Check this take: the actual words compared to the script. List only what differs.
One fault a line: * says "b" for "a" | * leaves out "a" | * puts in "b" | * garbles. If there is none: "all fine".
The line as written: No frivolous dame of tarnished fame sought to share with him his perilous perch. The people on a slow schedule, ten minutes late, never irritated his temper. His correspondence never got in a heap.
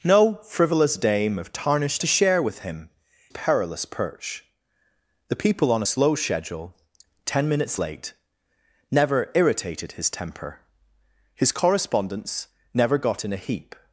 * leaves out "fame sought"
* leaves out "his"
* leaves out "a"